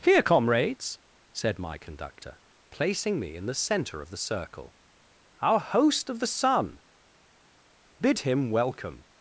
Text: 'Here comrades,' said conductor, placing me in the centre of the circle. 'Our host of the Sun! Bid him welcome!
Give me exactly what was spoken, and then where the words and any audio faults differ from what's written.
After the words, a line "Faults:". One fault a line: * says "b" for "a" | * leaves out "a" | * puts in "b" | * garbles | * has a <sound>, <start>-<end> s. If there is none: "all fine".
'Here comrades,' said my conductor, placing me in the centre of the circle. 'Our host of the Sun! Bid him welcome!
Faults:
* puts in "my"